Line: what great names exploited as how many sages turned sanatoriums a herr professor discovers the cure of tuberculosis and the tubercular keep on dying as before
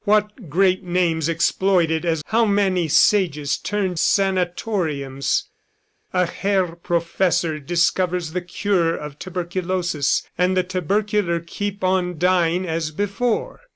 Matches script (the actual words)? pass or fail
pass